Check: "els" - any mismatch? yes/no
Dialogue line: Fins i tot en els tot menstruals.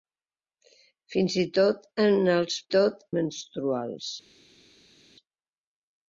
no